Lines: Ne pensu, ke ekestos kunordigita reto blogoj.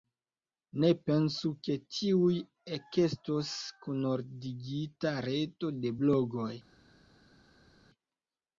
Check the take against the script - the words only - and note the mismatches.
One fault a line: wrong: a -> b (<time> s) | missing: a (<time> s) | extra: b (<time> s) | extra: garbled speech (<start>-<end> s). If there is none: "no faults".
extra: tuj (2.0 s)
extra: de (5.8 s)